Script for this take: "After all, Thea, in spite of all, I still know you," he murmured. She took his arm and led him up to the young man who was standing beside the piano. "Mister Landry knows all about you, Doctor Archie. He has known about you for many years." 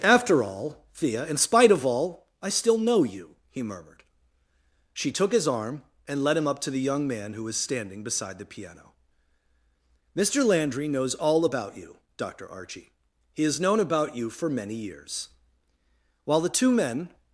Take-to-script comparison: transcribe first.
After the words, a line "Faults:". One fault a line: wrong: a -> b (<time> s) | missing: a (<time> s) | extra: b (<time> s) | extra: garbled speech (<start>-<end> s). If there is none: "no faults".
"After all, Thea, in spite of all, I still know you," he murmured. She took his arm and led him up to the young man who was standing beside the piano. "Mister Landry knows all about you, Doctor Archie. He has known about you for many years." While the two men
Faults:
extra: While the two men (16.3 s)